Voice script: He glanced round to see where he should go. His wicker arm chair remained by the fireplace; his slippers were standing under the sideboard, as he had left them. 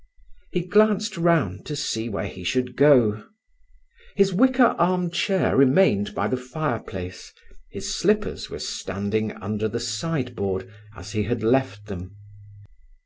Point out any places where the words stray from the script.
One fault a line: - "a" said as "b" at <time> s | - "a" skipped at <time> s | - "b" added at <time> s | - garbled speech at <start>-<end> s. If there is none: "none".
none